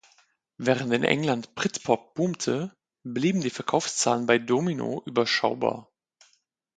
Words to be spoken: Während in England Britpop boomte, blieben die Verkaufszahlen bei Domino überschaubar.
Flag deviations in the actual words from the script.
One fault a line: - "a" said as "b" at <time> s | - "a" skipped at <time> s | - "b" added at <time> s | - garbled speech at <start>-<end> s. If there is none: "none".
none